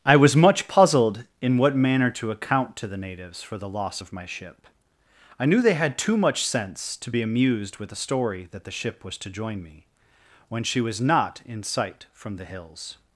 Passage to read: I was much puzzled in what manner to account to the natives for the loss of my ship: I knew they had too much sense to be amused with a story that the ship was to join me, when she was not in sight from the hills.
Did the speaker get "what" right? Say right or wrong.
right